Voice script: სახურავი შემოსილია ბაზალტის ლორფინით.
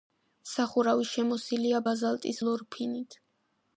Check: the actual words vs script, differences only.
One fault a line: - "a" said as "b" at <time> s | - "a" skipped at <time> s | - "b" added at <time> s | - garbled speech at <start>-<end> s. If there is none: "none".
none